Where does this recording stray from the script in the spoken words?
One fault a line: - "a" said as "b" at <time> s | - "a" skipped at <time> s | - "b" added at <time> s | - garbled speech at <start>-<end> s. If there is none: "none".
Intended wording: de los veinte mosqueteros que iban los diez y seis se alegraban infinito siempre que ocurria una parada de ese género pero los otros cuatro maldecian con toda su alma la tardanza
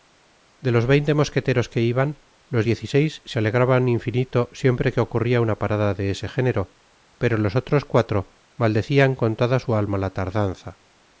none